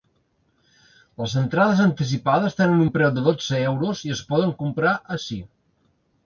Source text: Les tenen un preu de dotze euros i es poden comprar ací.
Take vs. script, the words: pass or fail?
fail